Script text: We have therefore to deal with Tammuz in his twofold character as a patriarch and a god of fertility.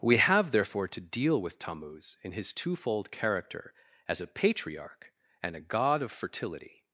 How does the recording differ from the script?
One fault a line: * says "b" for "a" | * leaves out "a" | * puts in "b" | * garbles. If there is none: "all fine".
all fine